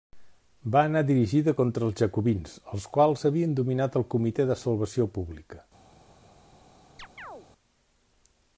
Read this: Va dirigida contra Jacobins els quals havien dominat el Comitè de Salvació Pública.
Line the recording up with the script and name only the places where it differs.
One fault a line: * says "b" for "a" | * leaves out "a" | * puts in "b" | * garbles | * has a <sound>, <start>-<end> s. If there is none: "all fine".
* puts in "anar"
* puts in "els"
* has a chirp, 7.0-7.5 s